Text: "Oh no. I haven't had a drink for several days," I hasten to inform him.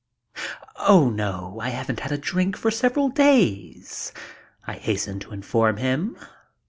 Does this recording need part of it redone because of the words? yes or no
no